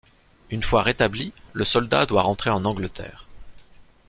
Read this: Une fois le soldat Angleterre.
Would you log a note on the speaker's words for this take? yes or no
yes